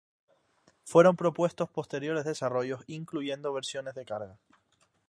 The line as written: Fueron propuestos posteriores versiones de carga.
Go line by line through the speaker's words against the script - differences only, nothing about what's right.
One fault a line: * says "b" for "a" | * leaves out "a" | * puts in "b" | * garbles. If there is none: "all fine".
* puts in "desarrollos incluyendo"